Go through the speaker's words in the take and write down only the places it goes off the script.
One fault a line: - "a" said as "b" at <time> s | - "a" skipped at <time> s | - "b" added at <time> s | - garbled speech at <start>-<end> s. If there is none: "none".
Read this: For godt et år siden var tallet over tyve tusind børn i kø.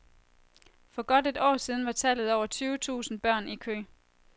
none